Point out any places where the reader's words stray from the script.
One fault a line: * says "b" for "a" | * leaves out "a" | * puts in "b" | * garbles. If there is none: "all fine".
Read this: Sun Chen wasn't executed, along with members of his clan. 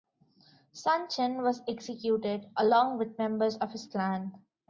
* says "was" for "wasn't"